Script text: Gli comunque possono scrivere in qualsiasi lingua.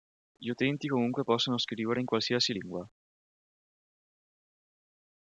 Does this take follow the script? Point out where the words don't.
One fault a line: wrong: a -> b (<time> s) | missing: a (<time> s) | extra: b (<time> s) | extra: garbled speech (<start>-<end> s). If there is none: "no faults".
extra: utenti (0.5 s)